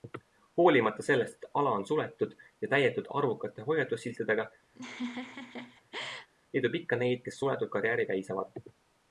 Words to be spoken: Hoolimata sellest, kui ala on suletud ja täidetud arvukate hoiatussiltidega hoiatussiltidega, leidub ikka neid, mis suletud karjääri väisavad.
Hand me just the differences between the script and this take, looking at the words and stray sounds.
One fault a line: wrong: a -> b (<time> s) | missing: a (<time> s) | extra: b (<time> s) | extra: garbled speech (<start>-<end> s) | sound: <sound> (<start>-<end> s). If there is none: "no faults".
wrong: kui -> et (1.5 s)
missing: hoiatussiltidega (4.5 s)
sound: laugh (4.7-6.3 s)
wrong: mis -> kes (7.3 s)